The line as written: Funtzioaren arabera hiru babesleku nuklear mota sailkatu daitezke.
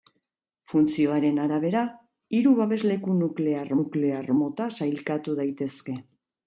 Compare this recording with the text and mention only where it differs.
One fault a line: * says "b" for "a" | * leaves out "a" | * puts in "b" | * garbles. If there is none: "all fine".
* puts in "nuklear"